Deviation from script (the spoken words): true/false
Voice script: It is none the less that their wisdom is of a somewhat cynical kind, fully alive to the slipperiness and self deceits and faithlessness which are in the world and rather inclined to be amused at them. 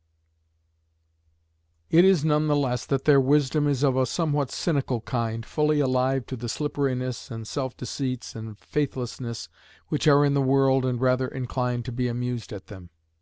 false